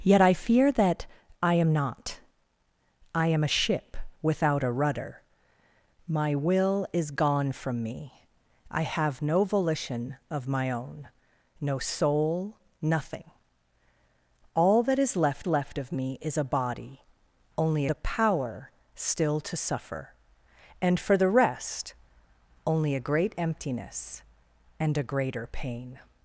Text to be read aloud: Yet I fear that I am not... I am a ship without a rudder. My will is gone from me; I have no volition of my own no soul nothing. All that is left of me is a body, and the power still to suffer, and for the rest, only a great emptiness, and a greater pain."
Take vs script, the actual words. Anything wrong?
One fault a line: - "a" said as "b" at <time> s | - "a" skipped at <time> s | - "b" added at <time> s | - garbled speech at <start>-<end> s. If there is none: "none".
- "left" added at 15.5 s
- "and" said as "only" at 17.6 s